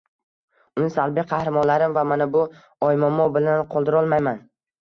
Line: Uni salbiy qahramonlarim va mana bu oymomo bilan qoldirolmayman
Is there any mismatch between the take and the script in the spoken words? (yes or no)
no